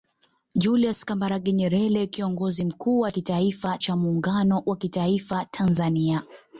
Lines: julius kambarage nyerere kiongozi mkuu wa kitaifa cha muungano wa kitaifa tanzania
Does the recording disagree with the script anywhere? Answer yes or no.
no